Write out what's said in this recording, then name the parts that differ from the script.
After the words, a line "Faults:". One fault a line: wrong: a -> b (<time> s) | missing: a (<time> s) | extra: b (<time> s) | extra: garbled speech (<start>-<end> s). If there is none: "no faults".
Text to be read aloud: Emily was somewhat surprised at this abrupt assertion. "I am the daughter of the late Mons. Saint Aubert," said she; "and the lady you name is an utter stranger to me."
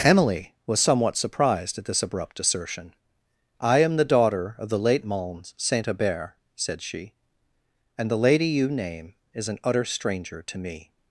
Emily was somewhat surprised at this abrupt assertion. "I am the daughter of the late Mons. Saint Aubert," said she; "and the lady you name is an utter stranger to me."
Faults:
no faults